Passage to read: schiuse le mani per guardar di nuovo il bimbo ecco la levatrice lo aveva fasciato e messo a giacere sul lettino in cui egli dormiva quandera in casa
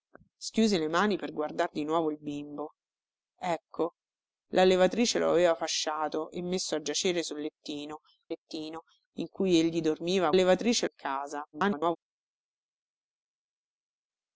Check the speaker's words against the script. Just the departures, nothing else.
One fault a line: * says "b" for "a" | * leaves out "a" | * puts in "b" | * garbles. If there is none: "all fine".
* puts in "lettino"
* says "levatrice" for "quandera"
* garbles